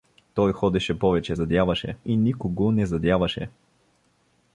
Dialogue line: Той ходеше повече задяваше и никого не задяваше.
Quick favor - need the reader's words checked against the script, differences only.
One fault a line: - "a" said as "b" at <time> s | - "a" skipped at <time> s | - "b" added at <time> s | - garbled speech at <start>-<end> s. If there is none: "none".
none